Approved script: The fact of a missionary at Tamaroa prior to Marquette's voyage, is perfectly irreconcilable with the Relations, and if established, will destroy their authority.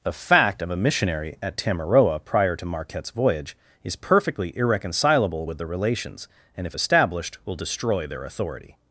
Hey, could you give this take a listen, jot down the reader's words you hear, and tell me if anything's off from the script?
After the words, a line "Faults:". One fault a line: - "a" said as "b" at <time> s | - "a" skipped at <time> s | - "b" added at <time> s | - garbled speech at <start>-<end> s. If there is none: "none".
The fact of a missionary at Tamaroa prior to Marquette's voyage, is perfectly irreconcilable with the Relations, and if established, will destroy their authority.
Faults:
none